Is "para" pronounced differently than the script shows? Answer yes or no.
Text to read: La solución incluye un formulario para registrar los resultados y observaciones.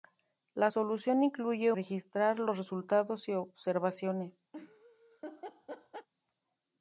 yes